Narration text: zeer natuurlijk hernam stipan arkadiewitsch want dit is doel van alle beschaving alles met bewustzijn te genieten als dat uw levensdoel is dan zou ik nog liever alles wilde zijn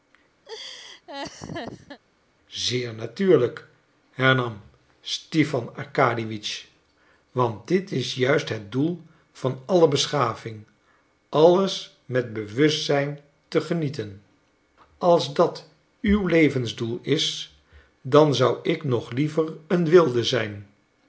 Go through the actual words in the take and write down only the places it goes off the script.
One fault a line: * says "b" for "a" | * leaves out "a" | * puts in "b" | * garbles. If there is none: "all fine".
* puts in "juist het"
* says "een" for "alles"